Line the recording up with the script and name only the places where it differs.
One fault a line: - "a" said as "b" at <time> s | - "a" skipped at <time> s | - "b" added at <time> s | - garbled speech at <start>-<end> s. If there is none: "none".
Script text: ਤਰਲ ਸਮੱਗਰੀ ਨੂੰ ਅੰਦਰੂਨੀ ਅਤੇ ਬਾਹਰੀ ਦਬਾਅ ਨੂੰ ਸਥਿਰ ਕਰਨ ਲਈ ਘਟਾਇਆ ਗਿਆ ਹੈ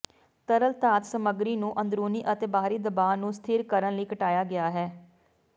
- "ਧਾਤ" added at 0.8 s